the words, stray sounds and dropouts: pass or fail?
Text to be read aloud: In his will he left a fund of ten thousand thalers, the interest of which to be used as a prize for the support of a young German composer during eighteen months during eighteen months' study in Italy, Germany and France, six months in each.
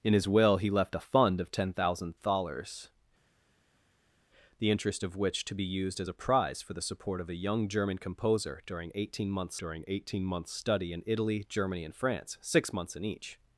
pass